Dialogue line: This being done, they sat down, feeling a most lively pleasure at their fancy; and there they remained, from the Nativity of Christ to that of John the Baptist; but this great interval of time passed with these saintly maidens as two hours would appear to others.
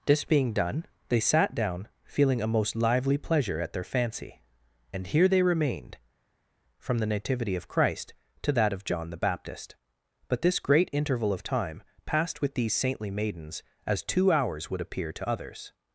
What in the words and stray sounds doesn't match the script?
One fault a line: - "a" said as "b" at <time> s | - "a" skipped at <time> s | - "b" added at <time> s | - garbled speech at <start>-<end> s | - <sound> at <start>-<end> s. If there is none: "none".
- "there" said as "here" at 5.0 s